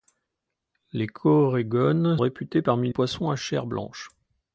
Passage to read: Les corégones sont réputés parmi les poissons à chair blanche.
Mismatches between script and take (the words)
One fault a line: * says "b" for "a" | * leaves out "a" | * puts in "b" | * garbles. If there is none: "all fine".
* leaves out "sont"
* leaves out "les"